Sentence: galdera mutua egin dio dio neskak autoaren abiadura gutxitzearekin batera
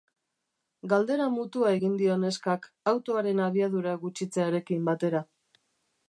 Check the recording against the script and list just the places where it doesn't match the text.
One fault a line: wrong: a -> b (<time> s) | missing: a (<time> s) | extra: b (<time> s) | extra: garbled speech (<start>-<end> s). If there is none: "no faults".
missing: dio (2.2 s)